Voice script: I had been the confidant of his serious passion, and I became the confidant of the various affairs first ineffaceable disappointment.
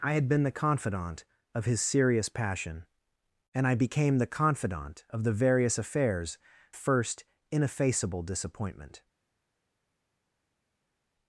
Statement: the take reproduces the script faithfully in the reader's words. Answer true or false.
true